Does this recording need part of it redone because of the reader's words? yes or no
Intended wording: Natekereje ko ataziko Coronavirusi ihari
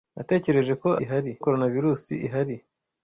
yes